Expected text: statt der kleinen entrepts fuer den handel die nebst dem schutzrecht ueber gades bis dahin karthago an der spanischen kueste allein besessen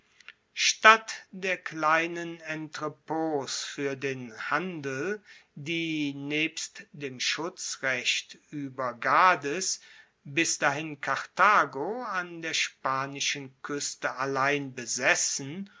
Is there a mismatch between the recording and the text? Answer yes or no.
no